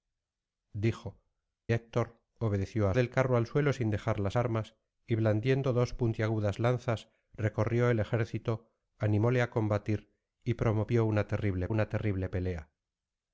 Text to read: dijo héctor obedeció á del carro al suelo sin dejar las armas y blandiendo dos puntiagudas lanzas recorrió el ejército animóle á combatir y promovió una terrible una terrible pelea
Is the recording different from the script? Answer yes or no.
no